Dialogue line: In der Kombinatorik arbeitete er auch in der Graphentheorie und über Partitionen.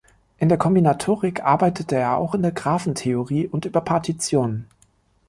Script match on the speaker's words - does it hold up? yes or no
yes